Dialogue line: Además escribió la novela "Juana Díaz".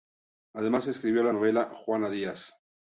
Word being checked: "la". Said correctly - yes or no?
yes